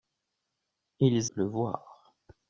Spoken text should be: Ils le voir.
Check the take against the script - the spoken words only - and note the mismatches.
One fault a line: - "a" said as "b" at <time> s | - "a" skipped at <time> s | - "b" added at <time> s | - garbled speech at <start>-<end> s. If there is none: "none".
none